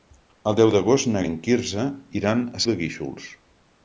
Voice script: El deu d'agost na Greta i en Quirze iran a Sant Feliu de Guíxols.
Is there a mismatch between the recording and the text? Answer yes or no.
yes